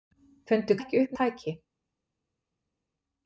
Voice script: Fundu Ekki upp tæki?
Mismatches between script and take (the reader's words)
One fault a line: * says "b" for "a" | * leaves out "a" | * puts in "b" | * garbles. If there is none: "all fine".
all fine